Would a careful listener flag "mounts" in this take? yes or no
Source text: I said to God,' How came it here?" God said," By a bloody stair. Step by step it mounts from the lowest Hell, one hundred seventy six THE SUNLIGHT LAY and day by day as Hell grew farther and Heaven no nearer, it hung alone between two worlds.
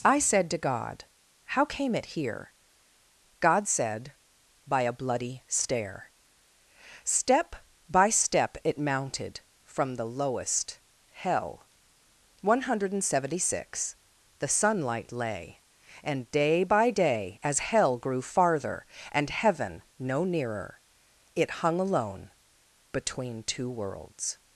yes